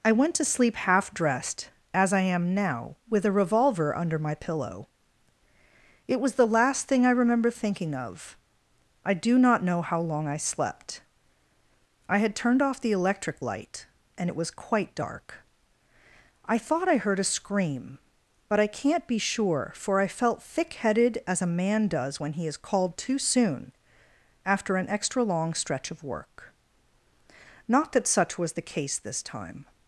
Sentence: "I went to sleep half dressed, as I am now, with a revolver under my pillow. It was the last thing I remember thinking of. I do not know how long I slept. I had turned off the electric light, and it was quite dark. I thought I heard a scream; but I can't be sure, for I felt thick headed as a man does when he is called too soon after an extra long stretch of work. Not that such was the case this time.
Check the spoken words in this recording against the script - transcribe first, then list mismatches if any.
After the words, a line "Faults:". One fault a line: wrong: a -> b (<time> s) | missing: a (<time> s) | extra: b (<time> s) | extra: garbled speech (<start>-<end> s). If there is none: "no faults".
"I went to sleep half dressed, as I am now, with a revolver under my pillow. It was the last thing I remember thinking of. I do not know how long I slept. I had turned off the electric light, and it was quite dark. I thought I heard a scream; but I can't be sure, for I felt thick headed as a man does when he is called too soon after an extra long stretch of work. Not that such was the case this time.
Faults:
no faults